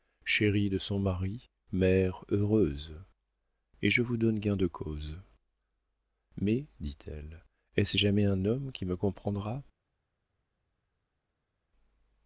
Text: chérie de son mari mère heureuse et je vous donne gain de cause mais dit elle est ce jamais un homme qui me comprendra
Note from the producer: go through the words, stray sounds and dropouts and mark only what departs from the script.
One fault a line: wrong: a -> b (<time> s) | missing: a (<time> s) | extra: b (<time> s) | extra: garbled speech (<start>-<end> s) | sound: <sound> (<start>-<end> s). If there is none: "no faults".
no faults